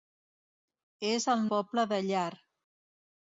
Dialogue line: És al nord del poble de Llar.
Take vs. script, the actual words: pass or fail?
fail